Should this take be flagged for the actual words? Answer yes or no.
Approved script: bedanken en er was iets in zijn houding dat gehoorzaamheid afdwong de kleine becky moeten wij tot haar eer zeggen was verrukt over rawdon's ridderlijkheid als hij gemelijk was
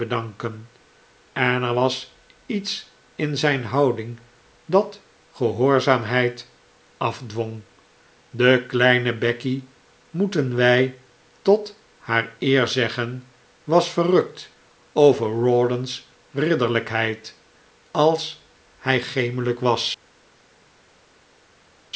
no